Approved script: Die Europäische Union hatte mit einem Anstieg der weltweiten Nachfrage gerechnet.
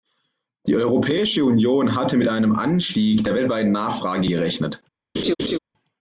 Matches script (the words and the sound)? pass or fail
fail